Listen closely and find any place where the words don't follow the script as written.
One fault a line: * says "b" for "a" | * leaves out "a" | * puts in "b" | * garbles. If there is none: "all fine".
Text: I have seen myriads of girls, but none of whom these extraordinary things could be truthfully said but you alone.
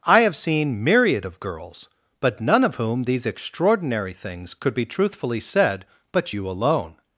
* says "myriad" for "myriads"